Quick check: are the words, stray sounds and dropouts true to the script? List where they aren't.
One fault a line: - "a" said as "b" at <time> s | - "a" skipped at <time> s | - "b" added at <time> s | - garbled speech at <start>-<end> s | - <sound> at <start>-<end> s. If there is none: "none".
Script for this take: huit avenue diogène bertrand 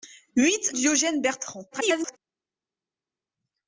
- "avenue" skipped at 0.7 s
- garbled speech at 1.7-2.2 s